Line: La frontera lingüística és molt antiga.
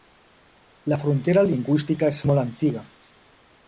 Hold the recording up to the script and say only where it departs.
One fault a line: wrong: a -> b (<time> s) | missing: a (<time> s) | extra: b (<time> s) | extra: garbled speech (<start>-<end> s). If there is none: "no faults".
no faults